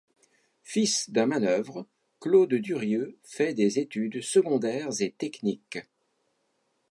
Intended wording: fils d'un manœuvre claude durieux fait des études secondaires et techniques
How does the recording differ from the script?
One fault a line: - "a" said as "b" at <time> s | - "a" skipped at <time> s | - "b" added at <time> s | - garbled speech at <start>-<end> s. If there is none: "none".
none